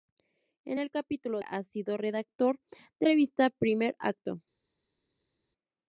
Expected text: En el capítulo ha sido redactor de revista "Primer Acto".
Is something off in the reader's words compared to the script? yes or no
no